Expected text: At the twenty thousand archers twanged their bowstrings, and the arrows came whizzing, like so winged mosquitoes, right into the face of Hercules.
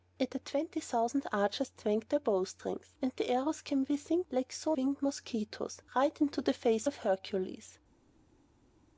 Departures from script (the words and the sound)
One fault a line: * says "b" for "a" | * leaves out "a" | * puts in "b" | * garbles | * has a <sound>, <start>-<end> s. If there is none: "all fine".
all fine